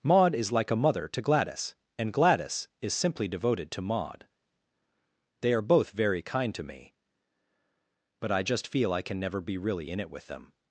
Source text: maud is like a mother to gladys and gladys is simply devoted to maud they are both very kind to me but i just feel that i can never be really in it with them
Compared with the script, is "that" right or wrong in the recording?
wrong